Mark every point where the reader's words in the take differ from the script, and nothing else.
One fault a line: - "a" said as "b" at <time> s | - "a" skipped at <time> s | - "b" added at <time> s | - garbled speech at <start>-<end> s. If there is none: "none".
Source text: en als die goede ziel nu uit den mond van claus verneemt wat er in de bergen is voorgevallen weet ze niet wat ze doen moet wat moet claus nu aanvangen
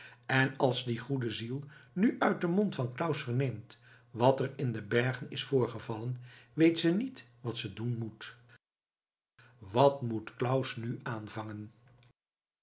none